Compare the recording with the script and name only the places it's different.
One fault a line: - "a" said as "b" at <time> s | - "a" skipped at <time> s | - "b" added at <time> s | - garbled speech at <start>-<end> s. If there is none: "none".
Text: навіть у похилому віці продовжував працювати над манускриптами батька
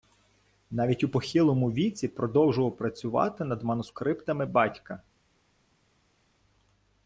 none